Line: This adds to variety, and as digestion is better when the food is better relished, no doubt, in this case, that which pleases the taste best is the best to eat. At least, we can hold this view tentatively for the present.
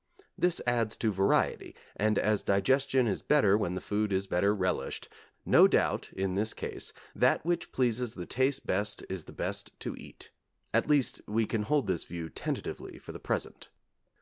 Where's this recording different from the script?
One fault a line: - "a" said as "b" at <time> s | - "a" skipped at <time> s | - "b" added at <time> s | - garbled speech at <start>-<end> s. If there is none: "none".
none